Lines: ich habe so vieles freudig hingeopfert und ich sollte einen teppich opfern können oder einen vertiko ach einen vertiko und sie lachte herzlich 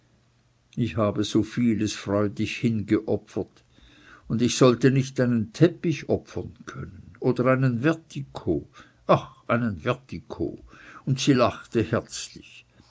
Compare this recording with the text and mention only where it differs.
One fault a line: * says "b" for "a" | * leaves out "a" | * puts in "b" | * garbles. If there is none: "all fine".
* puts in "nicht"